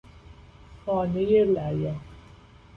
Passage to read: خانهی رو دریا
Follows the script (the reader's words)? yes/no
yes